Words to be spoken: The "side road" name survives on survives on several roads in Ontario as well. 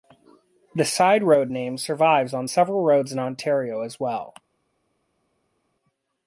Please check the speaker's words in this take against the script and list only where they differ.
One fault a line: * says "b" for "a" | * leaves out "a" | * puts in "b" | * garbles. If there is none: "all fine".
* leaves out "survives on"